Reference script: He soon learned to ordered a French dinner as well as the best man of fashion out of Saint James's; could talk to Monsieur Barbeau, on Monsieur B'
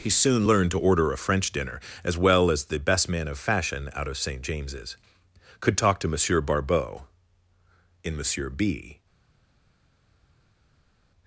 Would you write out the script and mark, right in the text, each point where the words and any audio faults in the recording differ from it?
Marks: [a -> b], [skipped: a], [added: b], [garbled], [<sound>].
He soon learned to [ordered -> order] a French dinner as well as the best man of fashion out of Saint James's; could talk to Monsieur Barbeau, [on -> in] Monsieur B'